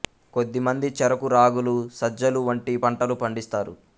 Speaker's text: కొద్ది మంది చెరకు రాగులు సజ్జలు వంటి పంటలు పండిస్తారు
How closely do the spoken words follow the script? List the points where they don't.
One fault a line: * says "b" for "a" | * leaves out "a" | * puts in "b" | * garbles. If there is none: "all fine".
all fine